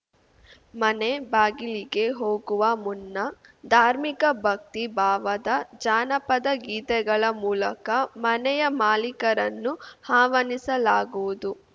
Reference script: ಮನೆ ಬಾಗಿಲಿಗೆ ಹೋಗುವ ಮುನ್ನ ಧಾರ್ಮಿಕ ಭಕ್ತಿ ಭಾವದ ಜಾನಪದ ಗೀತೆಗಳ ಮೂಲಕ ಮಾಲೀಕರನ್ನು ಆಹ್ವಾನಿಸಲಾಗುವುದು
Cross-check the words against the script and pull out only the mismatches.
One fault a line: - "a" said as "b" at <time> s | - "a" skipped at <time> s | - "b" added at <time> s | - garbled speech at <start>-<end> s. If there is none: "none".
- "ಮನೆಯ" added at 8.2 s